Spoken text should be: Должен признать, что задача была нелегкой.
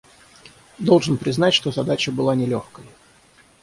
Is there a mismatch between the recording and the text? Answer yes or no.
no